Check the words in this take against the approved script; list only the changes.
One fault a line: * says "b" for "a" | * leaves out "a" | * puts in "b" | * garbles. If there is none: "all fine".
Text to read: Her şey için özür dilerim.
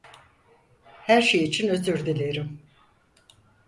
all fine